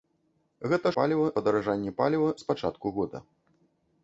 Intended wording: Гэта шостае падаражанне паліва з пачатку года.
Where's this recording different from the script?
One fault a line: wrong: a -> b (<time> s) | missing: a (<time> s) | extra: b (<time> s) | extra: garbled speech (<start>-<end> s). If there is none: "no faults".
wrong: шостае -> паліва (1.0 s)